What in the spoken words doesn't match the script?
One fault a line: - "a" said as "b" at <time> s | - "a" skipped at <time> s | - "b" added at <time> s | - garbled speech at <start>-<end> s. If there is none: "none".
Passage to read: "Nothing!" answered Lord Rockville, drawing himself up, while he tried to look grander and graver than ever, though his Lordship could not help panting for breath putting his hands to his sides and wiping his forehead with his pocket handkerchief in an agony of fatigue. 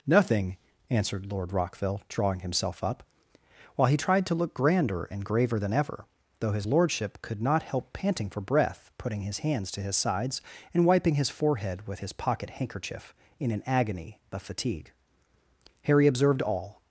- "Harry observed all" added at 15.8 s